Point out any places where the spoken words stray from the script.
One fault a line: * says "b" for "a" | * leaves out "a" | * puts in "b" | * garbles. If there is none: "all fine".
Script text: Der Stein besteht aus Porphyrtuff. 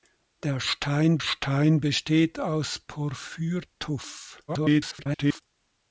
* puts in "Stein"
* garbles